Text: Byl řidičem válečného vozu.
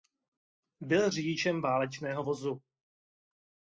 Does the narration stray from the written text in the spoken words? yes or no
no